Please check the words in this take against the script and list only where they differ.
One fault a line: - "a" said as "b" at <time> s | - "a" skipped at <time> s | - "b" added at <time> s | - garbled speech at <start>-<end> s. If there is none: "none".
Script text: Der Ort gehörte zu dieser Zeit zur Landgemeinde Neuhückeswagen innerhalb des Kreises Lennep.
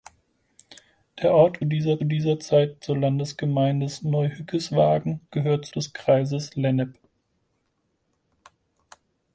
- "gehörte" said as "dieser" at 1.6 s
- "innerhalb" said as "gehörte" at 5.3 s